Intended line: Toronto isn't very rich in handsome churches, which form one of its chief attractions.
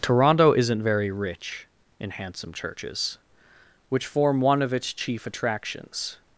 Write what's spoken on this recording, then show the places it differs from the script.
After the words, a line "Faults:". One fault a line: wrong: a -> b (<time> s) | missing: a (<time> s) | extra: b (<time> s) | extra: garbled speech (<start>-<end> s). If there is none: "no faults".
Toronto isn't very rich in handsome churches, which form one of its chief attractions.
Faults:
no faults